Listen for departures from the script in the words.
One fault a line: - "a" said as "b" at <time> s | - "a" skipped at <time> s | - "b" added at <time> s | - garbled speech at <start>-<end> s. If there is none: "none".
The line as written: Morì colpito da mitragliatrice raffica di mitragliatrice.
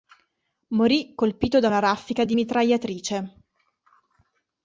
- "mitragliatrice" said as "una" at 1.6 s